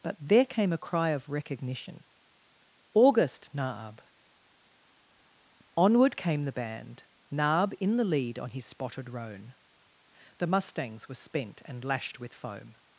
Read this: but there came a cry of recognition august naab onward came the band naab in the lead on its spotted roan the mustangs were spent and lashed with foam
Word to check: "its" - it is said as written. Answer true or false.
false